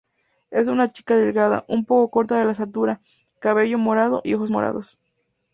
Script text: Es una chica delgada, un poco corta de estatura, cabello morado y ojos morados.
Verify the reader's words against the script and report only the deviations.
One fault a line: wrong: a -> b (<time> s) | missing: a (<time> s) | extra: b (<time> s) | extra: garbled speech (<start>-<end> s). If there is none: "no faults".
no faults